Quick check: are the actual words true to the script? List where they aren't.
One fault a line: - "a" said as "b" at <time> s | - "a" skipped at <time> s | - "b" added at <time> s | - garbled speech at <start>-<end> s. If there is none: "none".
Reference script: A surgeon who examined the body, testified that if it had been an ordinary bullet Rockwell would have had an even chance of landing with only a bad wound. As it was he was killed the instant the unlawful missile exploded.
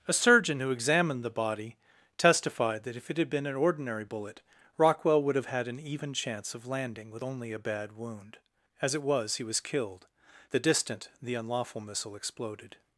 - "instant" said as "distant" at 10.6 s